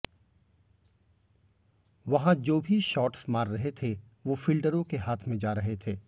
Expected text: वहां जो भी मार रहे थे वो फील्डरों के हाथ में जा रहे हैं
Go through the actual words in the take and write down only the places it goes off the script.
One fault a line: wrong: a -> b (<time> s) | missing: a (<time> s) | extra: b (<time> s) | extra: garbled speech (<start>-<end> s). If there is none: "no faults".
extra: शॉट्स (2.8 s)
wrong: हैं -> थे (5.8 s)